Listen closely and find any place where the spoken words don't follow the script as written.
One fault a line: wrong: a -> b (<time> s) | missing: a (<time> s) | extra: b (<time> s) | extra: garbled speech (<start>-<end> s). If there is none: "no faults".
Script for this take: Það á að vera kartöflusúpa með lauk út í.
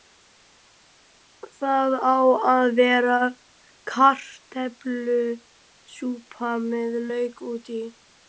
no faults